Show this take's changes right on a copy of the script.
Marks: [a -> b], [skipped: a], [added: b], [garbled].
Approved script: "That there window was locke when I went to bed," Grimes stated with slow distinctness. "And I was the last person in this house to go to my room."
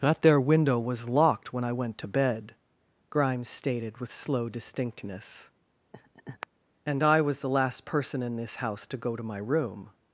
"That there window was [locke -> locked] when I went to bed," Grimes stated with slow distinctness. "And I was the last person in this house to go to my room."